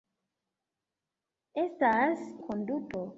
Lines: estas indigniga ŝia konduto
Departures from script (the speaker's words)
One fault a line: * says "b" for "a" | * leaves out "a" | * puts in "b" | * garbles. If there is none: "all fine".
* leaves out "indigniga ŝia"